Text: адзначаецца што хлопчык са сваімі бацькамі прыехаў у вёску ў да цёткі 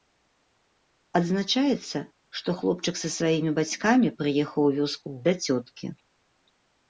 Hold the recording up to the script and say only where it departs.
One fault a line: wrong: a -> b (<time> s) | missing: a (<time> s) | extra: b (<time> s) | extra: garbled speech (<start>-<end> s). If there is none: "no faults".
no faults